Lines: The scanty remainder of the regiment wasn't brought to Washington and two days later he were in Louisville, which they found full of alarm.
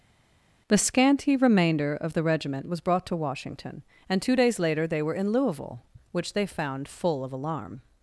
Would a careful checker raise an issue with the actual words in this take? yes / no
yes